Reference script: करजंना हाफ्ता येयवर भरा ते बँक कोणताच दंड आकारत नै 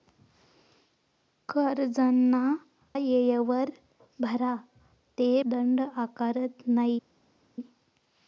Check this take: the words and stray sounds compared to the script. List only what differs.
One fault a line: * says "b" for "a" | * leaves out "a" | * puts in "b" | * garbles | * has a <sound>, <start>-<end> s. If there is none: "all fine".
* leaves out "हाफ्ता"
* leaves out "बँक कोणताच"